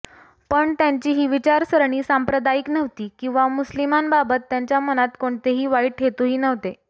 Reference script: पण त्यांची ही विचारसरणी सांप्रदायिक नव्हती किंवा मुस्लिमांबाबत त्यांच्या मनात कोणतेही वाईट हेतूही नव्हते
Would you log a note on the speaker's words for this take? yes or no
no